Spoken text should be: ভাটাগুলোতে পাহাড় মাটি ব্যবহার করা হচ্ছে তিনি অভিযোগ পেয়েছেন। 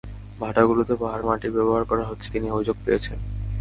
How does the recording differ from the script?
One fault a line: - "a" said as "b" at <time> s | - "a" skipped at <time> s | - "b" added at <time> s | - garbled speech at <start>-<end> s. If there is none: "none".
none